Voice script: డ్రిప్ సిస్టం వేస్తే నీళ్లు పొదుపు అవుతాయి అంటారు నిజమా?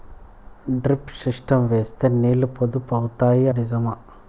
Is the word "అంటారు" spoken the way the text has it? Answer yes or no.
no